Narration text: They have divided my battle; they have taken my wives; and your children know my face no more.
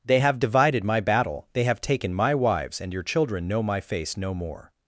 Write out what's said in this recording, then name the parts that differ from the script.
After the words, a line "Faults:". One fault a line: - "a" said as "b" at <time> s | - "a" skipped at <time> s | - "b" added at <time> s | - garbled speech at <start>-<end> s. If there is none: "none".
They have divided my battle; they have taken my wives; and your children know my face no more.
Faults:
none